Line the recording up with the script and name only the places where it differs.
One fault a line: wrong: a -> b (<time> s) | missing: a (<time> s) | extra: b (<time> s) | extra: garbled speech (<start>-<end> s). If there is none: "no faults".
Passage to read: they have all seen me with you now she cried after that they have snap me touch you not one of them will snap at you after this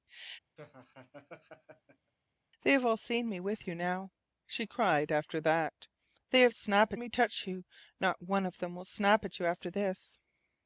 no faults